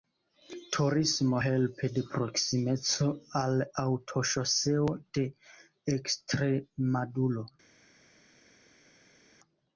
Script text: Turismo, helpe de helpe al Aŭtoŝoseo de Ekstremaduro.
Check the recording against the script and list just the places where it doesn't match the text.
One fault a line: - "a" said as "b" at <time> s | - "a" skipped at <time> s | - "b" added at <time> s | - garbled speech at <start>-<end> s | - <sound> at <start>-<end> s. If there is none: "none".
- "helpe" said as "proksimeco" at 2.1 s